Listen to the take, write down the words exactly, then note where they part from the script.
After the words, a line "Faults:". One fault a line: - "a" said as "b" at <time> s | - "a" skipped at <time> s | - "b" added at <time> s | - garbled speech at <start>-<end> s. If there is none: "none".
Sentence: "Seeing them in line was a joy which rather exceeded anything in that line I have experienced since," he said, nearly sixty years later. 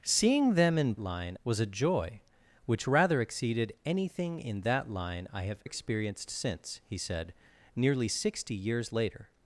"Seeing them in line was a joy which rather exceeded anything in that line I have experienced since," he said, nearly sixty years later.
Faults:
none